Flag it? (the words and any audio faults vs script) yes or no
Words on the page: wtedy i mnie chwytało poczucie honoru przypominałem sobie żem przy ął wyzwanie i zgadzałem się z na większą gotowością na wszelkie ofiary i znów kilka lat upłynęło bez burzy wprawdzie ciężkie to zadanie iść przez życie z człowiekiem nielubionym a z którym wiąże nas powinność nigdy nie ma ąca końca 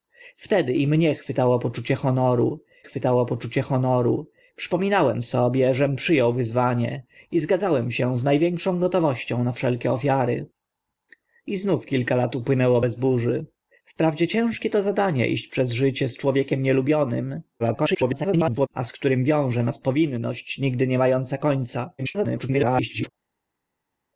yes